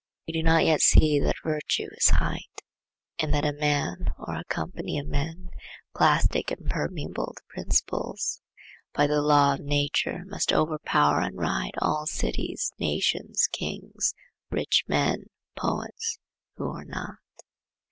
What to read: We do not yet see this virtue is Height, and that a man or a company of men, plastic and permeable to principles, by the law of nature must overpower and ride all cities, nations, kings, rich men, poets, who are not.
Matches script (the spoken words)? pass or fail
fail